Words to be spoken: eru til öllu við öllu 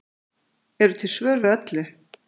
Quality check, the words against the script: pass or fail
fail